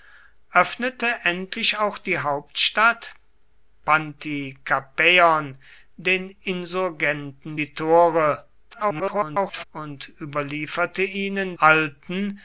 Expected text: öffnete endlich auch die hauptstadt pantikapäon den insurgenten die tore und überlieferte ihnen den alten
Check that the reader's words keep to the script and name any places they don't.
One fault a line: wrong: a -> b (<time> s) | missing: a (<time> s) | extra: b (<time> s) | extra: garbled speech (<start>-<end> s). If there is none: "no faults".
extra: garbled speech (8.7-9.6 s)
missing: den (11.6 s)